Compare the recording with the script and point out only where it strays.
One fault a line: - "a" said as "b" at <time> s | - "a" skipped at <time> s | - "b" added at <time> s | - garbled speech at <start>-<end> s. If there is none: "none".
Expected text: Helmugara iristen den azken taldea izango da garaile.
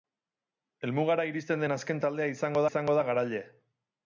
- "izango" added at 2.7 s